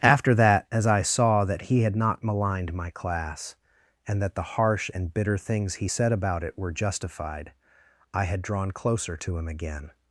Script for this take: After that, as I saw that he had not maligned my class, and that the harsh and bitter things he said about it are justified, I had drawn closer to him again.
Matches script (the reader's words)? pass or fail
fail